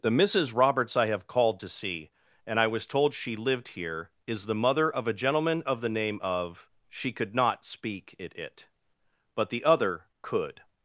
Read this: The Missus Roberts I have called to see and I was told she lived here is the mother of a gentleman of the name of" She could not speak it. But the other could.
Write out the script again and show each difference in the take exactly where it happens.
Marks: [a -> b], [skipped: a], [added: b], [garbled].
The Missus Roberts I have called to see and I was told she lived here is the mother of a gentleman of the name of" She could not speak it. [added: it] But the other could.